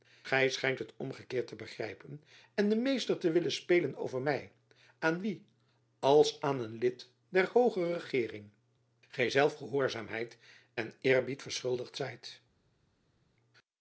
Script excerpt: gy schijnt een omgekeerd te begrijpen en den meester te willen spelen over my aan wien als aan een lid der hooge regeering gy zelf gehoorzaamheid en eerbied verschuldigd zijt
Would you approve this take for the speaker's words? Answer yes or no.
no